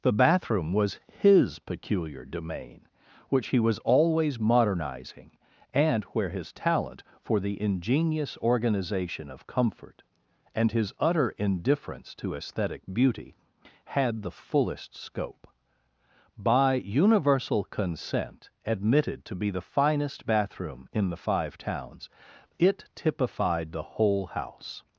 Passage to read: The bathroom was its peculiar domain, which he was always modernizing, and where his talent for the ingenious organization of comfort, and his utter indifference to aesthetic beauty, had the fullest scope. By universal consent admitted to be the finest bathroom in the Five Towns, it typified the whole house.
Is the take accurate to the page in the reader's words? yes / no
no